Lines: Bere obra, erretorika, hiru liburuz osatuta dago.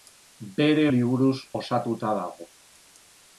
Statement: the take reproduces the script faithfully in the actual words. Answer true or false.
false